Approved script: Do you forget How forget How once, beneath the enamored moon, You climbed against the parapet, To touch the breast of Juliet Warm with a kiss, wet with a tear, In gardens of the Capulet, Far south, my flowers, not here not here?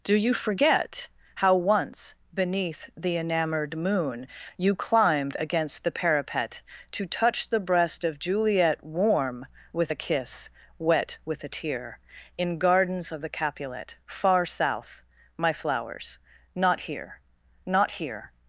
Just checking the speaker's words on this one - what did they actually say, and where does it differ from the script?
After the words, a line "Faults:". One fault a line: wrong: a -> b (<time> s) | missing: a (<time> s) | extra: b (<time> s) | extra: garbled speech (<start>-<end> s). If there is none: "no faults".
Do you forget How once, beneath the enamored moon, You climbed against the parapet, To touch the breast of Juliet Warm with a kiss, wet with a tear, In gardens of the Capulet, Far south, my flowers, not here not here?
Faults:
missing: forget How (1.5 s)